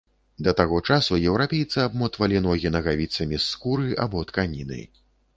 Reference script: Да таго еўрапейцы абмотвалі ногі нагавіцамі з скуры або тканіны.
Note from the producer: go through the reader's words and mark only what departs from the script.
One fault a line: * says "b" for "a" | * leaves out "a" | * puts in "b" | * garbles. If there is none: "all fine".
* puts in "часу"